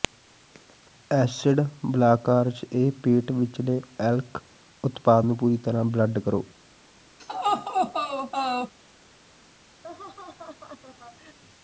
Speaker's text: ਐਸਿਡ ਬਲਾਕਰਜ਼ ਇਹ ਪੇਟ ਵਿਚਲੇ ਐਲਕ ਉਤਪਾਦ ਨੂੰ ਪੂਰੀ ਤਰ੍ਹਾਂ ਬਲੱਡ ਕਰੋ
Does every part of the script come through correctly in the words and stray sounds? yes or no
no